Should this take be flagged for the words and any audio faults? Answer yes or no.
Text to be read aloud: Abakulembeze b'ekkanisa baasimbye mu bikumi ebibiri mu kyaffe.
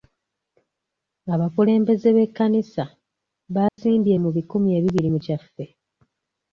yes